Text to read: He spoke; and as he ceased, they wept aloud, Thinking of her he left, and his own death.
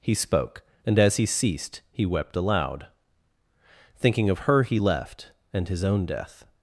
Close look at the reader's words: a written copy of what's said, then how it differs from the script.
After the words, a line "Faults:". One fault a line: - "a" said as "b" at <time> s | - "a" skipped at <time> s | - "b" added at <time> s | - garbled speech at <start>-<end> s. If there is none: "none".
He spoke; and as he ceased, he wept aloud, Thinking of her he left, and his own death.
Faults:
- "they" said as "he" at 1.9 s